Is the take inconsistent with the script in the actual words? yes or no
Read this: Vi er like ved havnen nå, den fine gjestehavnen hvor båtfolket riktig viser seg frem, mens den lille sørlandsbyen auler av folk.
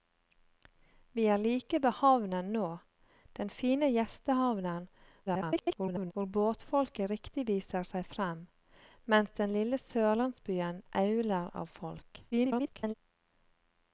yes